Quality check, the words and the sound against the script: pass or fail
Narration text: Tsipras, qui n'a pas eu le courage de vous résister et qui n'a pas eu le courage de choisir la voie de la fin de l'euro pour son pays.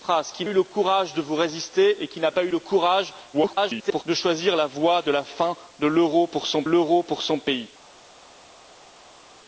fail